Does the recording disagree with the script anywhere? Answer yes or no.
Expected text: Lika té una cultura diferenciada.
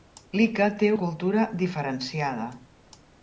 yes